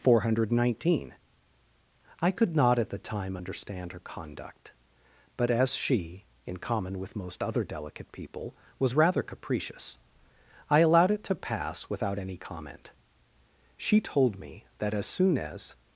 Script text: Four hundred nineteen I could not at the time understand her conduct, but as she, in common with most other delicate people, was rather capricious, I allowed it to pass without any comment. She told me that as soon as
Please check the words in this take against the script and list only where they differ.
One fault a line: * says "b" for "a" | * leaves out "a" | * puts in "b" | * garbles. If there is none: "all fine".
all fine